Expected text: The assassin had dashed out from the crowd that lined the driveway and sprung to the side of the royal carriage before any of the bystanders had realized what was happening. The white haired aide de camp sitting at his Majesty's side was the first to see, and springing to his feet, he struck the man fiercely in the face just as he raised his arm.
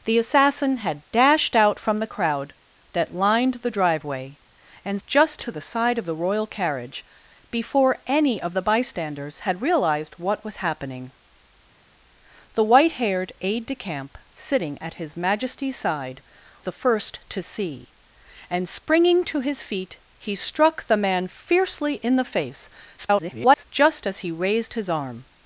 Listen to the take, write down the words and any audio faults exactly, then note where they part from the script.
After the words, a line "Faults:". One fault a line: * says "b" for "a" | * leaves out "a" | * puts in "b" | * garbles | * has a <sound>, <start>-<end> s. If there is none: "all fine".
The assassin had dashed out from the crowd that lined the driveway and just to the side of the royal carriage before any of the bystanders had realized what was happening. The white haired aide de camp sitting at his Majesty's side the first to see, and springing to his feet, he struck the man fiercely in the face [garbled] just as he raised his arm.
Faults:
* says "just" for "sprung"
* leaves out "was"
* garbles